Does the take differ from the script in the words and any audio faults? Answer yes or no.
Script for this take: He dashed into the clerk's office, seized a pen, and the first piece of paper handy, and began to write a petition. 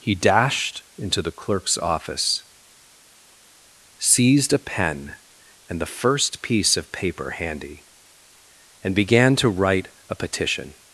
no